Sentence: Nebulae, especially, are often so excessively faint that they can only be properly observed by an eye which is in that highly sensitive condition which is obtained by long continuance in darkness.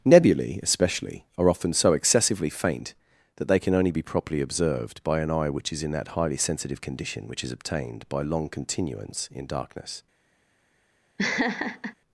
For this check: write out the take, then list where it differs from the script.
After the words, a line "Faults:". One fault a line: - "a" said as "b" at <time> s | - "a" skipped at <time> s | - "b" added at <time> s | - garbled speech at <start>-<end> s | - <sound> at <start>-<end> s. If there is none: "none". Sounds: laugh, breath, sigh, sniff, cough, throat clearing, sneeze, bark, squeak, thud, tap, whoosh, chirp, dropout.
Nebulae, especially, are often so excessively faint that they can only be properly observed by an eye which is in that highly sensitive condition which is obtained by long continuance in darkness.
Faults:
- laugh at 11.2-11.9 s